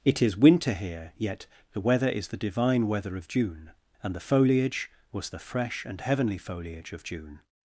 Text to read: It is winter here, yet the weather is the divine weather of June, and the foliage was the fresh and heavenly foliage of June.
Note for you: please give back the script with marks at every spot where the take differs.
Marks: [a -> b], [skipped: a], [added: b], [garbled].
It is winter here, yet the weather is the divine weather of June, and the foliage was the fresh and heavenly foliage of June.